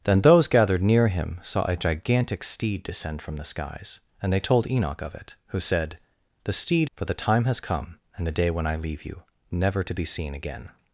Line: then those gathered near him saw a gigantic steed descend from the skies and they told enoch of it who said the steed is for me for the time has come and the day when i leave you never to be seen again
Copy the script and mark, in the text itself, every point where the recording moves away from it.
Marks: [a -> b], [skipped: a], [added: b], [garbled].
then those gathered near him saw a gigantic steed descend from the skies and they told enoch of it who said the steed [skipped: is for me] for the time has come and the day when i leave you never to be seen again